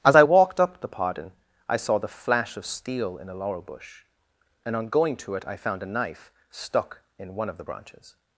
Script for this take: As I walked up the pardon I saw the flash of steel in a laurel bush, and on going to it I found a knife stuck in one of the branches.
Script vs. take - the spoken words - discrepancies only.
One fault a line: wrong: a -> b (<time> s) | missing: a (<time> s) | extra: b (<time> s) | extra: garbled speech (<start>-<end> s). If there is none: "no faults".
no faults